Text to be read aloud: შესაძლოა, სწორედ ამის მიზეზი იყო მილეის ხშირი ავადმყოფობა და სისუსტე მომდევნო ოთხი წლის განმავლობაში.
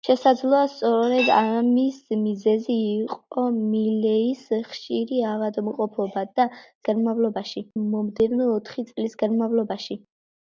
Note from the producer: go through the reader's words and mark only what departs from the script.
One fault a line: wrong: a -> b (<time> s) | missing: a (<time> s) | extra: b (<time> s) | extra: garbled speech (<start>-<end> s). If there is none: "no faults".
wrong: სისუსტე -> განმავლობაში (6.9 s)